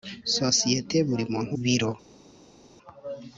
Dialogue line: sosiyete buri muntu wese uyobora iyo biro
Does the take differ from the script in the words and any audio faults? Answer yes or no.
yes